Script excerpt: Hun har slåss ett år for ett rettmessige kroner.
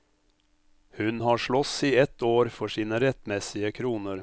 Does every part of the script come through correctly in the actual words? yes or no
no